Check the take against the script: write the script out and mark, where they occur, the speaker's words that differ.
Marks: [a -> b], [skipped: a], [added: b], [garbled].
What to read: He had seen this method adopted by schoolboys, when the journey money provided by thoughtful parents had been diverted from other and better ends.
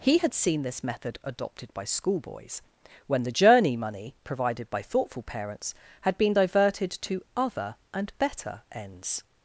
He had seen this method adopted by schoolboys, when the journey money provided by thoughtful parents had been diverted [from -> to] other and better ends.